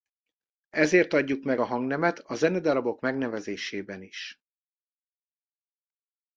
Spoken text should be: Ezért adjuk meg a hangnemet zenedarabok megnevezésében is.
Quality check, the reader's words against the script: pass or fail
fail